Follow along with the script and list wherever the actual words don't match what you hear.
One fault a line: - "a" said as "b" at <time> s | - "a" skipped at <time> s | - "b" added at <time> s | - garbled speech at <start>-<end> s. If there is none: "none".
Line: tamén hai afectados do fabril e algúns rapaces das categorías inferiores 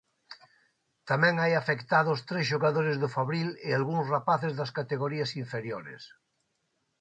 - "tres xogadores" added at 2.3 s